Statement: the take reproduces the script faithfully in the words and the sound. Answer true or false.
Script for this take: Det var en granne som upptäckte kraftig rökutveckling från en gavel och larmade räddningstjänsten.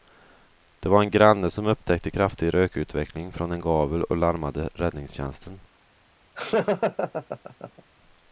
false